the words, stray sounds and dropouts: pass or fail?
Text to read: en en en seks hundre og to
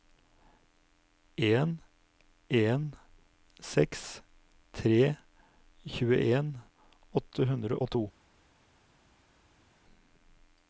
fail